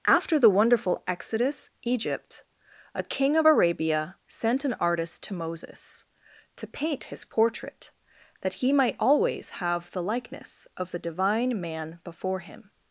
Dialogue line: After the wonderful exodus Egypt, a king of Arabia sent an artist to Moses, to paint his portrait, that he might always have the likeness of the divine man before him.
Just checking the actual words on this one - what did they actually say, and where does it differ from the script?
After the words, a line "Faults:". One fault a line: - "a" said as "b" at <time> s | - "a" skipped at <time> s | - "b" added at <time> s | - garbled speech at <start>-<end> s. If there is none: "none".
After the wonderful exodus Egypt, a king of Arabia sent an artist to Moses, to paint his portrait, that he might always have the likeness of the divine man before him.
Faults:
none